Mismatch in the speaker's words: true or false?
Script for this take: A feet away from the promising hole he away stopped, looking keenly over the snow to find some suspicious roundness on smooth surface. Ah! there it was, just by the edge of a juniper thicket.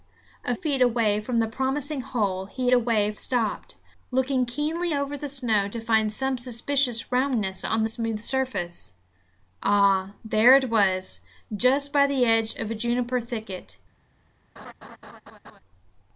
false